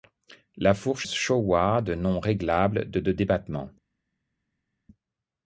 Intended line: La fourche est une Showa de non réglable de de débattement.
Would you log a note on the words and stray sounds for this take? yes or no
yes